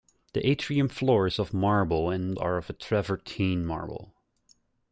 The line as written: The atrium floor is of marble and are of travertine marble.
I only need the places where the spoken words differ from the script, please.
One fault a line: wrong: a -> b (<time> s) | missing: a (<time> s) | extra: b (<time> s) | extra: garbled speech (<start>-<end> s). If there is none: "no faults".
no faults